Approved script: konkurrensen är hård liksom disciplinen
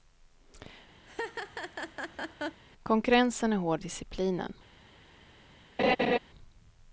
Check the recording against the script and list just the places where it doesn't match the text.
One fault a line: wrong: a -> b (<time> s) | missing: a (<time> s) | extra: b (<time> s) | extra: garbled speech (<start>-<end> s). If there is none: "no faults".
missing: liksom (3.8 s)